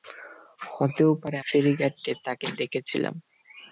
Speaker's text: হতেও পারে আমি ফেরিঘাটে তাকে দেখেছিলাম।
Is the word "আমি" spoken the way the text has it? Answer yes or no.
no